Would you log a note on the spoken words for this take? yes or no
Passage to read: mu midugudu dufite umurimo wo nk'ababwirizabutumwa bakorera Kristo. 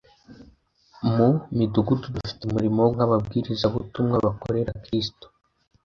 no